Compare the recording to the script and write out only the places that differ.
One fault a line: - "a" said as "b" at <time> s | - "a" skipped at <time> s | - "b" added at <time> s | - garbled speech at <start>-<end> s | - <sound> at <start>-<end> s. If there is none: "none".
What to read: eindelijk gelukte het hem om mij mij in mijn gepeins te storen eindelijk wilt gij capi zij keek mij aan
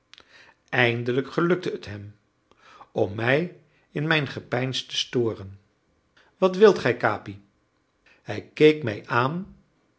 - "mij" skipped at 3.6 s
- "eindelijk" said as "wat" at 6.4 s
- "zij" said as "hij" at 8.2 s